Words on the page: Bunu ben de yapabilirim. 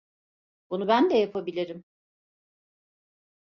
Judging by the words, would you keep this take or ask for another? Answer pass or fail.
pass